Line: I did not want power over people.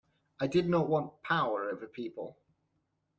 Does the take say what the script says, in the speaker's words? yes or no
yes